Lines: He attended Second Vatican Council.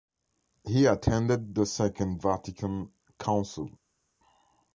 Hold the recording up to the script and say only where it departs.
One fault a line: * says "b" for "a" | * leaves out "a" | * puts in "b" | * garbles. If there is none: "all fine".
* puts in "the"